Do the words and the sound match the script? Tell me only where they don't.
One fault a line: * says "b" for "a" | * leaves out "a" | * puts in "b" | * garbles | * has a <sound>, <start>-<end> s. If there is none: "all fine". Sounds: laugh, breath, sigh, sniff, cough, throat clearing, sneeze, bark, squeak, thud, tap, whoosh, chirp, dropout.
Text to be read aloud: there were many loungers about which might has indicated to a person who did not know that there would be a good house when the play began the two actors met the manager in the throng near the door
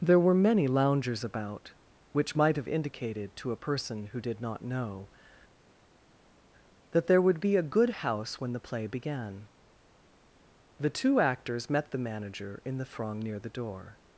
* says "have" for "has"